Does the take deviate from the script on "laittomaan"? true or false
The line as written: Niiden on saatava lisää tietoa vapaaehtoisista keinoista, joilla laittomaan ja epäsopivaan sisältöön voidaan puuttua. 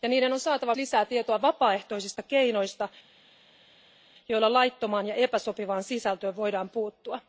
false